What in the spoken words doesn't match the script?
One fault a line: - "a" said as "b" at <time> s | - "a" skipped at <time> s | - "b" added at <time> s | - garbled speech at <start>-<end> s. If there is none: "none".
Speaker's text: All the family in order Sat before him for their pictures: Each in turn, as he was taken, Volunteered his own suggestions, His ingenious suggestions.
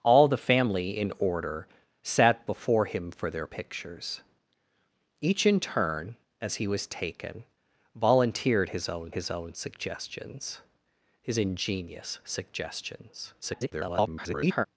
- "his own" added at 9.1 s
- garbled speech at 13.4-14.7 s